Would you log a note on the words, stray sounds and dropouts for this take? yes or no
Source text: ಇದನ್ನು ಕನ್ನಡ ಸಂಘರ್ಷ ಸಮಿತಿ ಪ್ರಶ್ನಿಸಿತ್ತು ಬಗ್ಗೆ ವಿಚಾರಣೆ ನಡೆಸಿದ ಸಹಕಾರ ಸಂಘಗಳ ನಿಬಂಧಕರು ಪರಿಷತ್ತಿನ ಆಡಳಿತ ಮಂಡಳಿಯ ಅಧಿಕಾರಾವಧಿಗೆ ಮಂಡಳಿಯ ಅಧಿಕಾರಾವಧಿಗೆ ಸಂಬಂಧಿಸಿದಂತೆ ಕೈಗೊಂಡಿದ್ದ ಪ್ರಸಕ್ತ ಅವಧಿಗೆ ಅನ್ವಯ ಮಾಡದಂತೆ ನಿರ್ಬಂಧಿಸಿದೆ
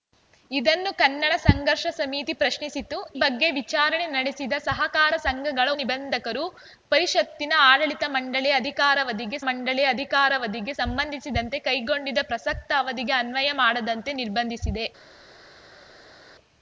no